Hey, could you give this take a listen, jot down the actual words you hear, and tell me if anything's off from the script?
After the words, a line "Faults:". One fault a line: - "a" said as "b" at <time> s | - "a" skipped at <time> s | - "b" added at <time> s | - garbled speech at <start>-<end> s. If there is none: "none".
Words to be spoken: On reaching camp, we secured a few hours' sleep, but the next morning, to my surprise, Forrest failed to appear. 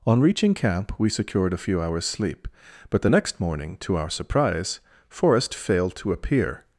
On reaching camp, we secured a few hours' sleep, but the next morning, to our surprise, Forrest failed to appear.
Faults:
- "my" said as "our" at 4.0 s